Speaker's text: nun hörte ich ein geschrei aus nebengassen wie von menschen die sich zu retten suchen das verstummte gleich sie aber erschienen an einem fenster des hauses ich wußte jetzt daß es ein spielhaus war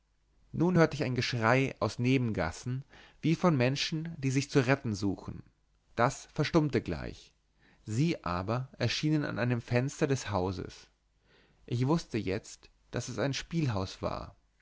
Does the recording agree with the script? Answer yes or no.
yes